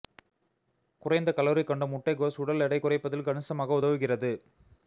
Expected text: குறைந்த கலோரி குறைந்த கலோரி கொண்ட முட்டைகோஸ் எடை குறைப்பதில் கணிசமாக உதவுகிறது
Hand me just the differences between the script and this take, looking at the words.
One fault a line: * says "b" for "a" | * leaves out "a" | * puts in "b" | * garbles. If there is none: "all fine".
* leaves out "குறைந்த கலோரி"
* puts in "உடல்"